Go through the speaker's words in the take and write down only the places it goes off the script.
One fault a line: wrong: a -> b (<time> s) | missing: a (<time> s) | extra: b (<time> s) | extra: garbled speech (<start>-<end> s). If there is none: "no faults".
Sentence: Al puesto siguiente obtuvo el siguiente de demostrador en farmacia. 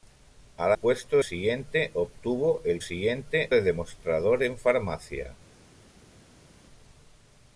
no faults